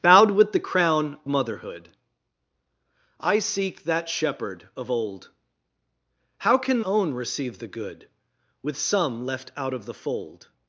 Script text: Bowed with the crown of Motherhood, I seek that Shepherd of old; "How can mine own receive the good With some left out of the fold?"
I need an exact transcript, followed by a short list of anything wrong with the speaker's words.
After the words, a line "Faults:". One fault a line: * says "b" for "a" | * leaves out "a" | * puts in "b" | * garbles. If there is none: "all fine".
Bowed with the crown Motherhood, I seek that Shepherd of old; "How can own receive the good With some left out of the fold?"
Faults:
* leaves out "of"
* leaves out "mine"